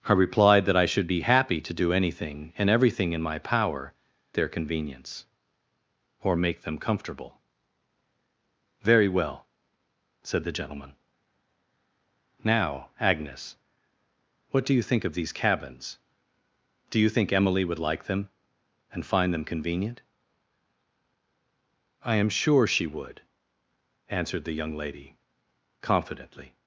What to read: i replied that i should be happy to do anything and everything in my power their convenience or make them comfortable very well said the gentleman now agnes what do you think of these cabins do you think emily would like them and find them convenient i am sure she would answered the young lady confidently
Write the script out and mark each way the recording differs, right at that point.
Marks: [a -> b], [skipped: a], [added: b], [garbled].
i replied that i should be happy to do anything and everything in my power their convenience or make them comfortable very well said the gentleman now agnes what do you think of these cabins do you think emily would like them and find them convenient i am sure she would answered the young lady confidently